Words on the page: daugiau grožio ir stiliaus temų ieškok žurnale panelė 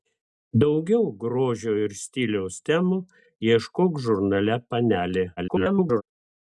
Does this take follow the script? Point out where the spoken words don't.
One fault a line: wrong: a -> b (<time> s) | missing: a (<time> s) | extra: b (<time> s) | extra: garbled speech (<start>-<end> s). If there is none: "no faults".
extra: garbled speech (5.4-6.0 s)